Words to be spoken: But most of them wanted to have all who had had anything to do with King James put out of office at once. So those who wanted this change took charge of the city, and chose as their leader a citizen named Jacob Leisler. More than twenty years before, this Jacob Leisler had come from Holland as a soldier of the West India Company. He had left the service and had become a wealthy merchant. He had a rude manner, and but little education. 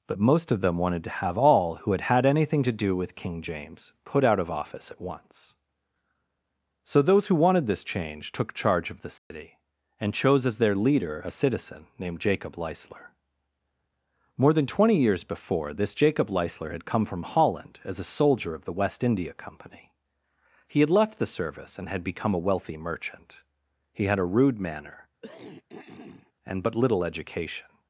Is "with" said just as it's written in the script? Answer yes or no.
yes